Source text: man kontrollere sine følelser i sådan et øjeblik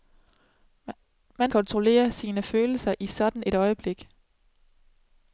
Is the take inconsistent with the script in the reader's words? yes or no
no